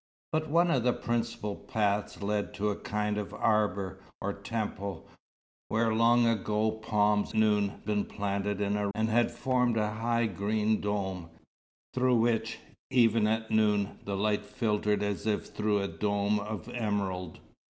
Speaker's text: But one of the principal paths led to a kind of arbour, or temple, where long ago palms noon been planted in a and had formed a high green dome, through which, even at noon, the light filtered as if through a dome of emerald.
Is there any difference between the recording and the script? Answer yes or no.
no